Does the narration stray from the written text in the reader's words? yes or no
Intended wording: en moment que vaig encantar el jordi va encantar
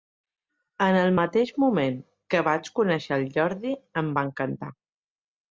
yes